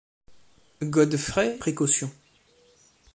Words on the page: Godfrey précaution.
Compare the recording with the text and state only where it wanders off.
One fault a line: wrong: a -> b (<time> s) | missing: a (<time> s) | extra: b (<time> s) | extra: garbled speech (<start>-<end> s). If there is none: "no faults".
no faults